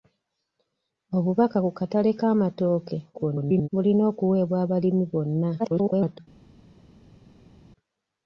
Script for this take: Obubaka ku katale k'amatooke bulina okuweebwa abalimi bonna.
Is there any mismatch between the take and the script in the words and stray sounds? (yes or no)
yes